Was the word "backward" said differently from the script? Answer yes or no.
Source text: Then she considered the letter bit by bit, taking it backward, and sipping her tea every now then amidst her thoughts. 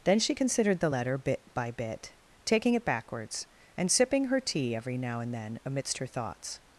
yes